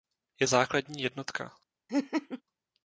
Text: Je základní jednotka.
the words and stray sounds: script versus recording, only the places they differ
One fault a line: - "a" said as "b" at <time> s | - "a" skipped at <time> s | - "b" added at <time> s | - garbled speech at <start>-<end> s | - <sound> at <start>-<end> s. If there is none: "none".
- laugh at 1.9-2.4 s